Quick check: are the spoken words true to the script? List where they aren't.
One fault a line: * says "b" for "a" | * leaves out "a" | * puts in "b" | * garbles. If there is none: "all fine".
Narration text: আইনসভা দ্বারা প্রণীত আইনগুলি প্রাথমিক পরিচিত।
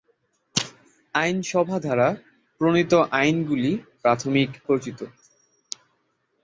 all fine